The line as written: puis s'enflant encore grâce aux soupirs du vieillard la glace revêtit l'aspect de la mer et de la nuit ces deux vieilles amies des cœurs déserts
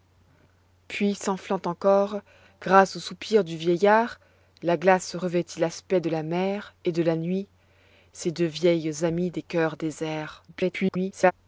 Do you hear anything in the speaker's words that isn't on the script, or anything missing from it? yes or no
yes